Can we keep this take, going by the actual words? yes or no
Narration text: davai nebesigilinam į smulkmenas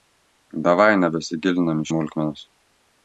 yes